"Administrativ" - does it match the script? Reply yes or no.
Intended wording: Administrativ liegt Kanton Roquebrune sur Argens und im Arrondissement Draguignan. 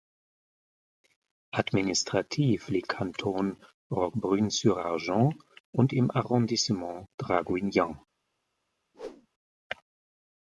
yes